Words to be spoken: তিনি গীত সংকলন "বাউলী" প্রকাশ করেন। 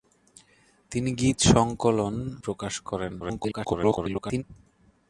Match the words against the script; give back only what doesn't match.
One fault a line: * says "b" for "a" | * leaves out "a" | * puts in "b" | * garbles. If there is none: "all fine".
* leaves out "বাউলী"
* garbles